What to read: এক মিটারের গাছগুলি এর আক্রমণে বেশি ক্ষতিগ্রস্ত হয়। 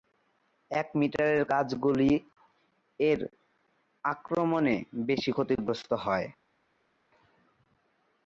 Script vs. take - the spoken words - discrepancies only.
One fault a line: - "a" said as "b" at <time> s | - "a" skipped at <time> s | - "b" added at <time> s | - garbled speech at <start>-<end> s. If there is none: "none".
none